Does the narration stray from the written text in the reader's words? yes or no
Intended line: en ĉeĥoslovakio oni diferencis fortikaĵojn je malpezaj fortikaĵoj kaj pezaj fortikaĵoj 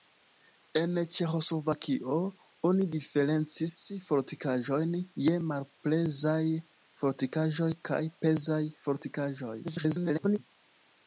yes